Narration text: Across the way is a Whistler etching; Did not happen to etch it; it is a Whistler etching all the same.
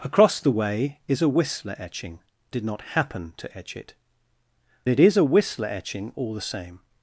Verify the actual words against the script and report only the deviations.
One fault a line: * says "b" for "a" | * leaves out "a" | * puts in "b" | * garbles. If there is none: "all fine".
all fine